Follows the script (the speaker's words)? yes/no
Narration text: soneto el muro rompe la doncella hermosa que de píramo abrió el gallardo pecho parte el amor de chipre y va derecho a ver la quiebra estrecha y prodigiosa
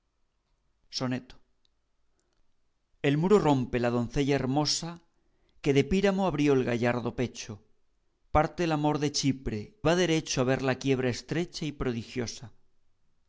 no